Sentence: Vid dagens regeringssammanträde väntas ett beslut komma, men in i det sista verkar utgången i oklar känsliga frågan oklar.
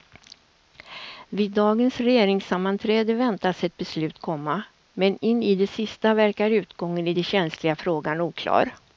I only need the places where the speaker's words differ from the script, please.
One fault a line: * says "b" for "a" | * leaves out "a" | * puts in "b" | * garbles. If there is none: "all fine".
* says "den" for "oklar"